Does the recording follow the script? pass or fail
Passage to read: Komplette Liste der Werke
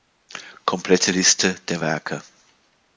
pass